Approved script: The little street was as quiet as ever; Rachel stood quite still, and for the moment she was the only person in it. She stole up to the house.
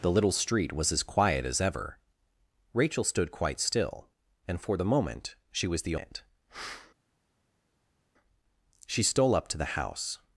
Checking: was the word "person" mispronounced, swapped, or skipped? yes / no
yes